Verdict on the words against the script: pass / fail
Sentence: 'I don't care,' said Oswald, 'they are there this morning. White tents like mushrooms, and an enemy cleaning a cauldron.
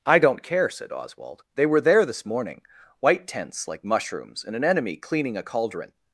fail